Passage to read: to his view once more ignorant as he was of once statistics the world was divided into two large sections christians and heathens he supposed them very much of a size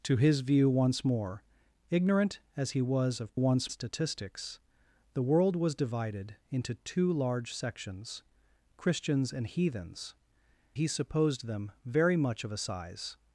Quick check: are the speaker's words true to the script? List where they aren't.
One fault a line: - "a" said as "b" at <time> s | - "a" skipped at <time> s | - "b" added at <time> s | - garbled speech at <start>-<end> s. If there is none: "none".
none